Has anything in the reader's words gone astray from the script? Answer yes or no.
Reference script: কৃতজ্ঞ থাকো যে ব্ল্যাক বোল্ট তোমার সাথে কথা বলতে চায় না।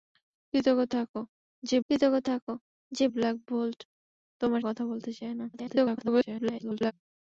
yes